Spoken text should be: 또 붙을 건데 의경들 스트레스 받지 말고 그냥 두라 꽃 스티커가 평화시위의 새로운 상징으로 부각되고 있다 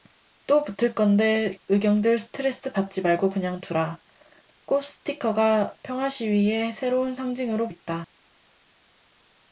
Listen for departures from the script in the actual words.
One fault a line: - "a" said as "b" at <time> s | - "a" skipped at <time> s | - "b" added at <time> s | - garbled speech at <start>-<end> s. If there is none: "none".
- "부각되고" skipped at 7.7 s